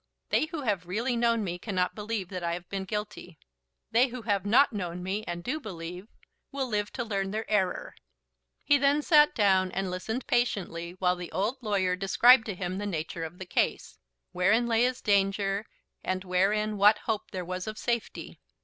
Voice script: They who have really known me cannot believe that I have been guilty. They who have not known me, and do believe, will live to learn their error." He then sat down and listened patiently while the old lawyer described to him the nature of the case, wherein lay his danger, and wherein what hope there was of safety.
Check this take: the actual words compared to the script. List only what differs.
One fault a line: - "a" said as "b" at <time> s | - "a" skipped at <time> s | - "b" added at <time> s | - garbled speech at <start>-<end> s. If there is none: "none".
none